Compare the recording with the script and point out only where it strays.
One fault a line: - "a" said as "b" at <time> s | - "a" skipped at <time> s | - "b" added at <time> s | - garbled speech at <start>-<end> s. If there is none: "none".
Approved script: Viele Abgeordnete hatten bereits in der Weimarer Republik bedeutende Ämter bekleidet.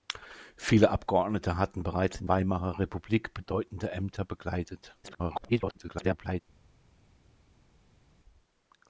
- "der" skipped at 2.3 s
- garbled speech at 5.0-6.4 s